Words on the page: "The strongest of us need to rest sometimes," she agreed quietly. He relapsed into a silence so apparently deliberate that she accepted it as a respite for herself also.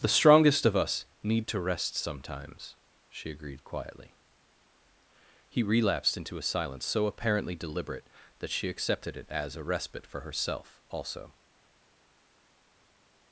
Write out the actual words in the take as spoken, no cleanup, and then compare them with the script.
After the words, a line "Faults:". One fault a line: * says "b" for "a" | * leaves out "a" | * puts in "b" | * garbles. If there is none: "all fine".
"The strongest of us need to rest sometimes," she agreed quietly. He relapsed into a silence so apparently deliberate that she accepted it as a respite for herself also.
Faults:
all fine